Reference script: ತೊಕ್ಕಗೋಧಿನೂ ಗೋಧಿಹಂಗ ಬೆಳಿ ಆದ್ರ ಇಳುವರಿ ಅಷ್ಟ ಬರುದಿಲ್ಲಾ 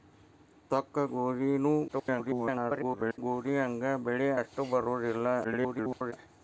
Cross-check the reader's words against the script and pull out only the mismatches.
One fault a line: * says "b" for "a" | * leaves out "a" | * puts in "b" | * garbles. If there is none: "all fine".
* garbles
* leaves out "ಆದ್ರ ಇಳುವರಿ"
* garbles